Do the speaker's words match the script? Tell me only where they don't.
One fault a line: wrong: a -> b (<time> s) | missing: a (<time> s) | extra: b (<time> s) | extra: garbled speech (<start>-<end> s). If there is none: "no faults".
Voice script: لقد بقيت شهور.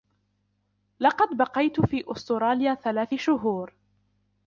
extra: في أستراليا ثلاث (1.8 s)